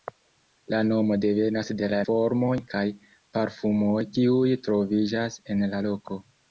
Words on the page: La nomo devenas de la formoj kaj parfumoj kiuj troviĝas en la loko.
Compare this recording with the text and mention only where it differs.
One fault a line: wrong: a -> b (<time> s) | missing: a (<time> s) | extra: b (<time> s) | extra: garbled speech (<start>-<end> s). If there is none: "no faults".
no faults